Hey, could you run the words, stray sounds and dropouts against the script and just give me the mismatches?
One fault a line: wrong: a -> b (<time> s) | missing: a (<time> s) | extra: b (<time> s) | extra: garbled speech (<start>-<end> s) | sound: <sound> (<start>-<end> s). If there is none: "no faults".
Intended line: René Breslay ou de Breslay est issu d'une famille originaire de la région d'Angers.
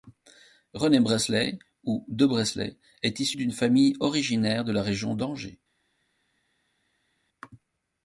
no faults